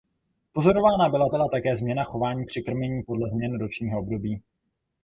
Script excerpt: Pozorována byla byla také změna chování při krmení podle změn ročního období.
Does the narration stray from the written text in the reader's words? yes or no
no